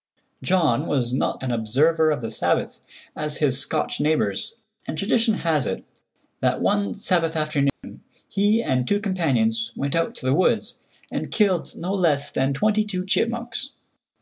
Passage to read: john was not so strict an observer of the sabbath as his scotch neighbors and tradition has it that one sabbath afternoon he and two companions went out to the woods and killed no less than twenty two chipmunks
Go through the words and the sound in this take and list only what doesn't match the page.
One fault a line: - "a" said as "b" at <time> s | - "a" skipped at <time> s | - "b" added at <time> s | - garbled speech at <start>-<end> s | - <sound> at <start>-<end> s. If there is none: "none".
- "so strict" skipped at 1.4 s
- dropout at 7.7-7.8 s